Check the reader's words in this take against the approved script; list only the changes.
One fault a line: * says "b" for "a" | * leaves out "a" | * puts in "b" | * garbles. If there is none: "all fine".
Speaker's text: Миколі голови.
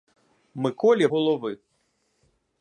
all fine